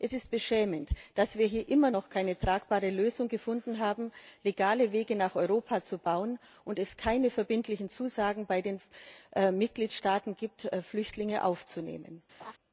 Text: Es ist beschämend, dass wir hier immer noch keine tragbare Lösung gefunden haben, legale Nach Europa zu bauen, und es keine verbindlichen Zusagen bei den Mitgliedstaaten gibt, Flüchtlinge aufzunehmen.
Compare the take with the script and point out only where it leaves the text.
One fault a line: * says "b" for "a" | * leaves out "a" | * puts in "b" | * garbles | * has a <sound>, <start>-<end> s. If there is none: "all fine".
* puts in "Wege"
* has a laugh, 12.4-12.5 s